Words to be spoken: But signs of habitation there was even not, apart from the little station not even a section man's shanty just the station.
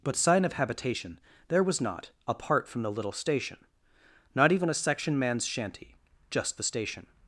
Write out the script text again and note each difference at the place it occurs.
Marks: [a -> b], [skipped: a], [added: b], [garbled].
But [signs -> sign] of habitation there was [skipped: even] not, apart from the little station not even a section man's shanty just the station.